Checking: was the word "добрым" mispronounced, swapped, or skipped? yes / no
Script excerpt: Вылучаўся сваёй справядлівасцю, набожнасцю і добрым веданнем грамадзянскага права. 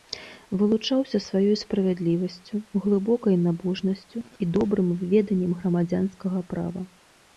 no